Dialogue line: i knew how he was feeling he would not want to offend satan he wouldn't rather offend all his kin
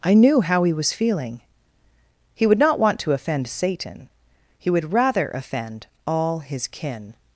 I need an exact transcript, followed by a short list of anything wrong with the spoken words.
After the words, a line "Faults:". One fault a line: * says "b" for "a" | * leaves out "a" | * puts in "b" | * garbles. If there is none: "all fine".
i knew how he was feeling he would not want to offend satan he would rather offend all his kin
Faults:
* says "would" for "wouldn't"